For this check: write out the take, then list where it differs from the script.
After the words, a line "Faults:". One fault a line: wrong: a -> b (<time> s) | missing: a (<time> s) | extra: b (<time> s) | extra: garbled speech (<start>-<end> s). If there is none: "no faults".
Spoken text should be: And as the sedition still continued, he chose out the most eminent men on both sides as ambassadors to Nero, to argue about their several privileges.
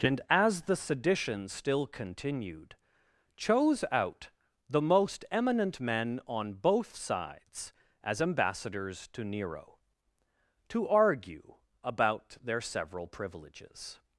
And as the sedition still continued, chose out the most eminent men on both sides as ambassadors to Nero, to argue about their several privileges.
Faults:
missing: he (2.8 s)